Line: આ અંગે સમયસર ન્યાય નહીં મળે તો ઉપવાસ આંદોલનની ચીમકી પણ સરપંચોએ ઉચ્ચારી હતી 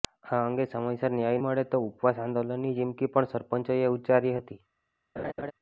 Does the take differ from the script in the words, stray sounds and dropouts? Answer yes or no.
yes